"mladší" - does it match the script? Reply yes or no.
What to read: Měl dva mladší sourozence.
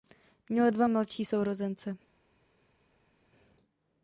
yes